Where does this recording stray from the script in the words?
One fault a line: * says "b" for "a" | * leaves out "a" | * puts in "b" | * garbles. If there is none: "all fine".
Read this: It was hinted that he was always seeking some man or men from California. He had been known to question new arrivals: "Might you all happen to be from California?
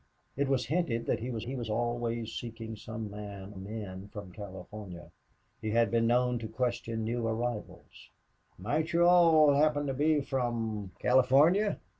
* puts in "he was"
* leaves out "or"